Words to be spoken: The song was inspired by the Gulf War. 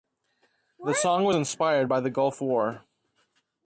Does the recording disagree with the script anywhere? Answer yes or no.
no